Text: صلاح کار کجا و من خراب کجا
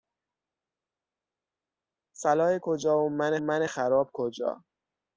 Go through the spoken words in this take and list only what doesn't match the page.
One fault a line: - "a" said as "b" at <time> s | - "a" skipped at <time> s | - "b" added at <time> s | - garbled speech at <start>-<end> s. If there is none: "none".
- "کار" skipped at 2.6 s
- "من" added at 3.4 s